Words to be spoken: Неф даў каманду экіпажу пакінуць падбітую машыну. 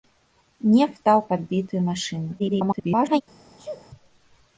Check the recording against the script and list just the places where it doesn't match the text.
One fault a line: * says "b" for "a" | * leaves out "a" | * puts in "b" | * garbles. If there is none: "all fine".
* leaves out "каманду экіпажу пакінуць"
* garbles